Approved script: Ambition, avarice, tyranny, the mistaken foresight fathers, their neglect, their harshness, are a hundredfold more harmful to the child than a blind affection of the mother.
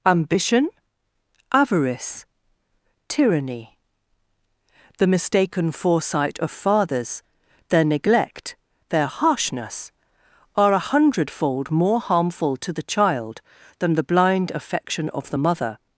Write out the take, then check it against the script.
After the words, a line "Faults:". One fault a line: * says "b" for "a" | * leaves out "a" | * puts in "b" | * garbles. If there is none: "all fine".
Ambition, avarice, tyranny, the mistaken foresight of fathers, their neglect, their harshness, are a hundredfold more harmful to the child than the blind affection of the mother.
Faults:
* puts in "of"
* says "the" for "a"